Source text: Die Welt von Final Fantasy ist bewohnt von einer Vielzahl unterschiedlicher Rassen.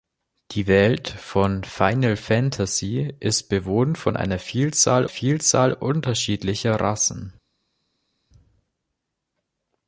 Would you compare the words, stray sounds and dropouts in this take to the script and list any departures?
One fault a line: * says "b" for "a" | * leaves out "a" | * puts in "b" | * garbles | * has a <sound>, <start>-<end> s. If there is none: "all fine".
* puts in "Vielzahl"